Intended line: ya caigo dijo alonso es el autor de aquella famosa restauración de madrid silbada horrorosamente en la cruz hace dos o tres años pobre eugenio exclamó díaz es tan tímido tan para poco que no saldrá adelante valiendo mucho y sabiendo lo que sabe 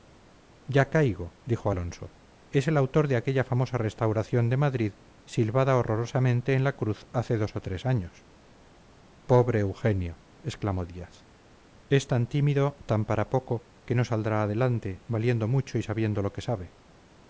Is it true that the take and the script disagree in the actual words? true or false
false